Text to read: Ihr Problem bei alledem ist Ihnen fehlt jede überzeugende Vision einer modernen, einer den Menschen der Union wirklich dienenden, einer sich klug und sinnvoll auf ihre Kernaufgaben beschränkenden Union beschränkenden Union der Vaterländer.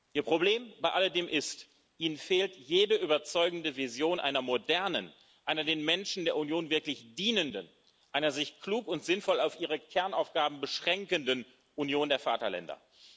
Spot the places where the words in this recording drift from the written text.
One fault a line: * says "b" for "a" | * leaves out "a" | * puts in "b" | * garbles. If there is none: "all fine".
* leaves out "beschränkenden Union"